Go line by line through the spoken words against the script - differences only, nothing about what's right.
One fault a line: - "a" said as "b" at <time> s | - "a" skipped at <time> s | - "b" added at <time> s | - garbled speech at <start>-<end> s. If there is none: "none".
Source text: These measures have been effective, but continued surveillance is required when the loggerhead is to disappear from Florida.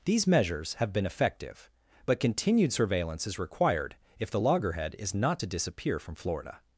- "when" said as "if" at 4.2 s
- "not" added at 5.1 s